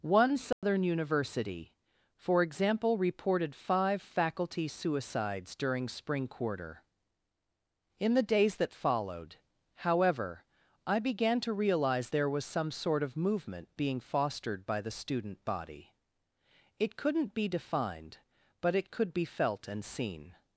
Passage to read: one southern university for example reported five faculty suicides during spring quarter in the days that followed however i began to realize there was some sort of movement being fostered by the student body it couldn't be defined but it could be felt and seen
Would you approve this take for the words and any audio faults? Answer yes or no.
no